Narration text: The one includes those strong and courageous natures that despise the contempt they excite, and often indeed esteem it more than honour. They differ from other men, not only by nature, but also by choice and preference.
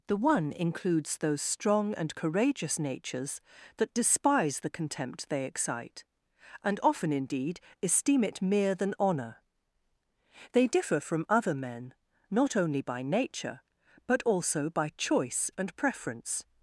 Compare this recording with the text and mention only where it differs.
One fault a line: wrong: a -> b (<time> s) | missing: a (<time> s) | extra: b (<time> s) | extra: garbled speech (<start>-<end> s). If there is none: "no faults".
wrong: more -> mere (8.4 s)